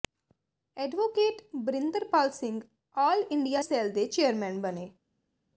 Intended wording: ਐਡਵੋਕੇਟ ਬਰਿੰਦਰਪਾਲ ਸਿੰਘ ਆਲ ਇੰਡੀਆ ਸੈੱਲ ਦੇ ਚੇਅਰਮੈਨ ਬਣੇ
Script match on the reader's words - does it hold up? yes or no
yes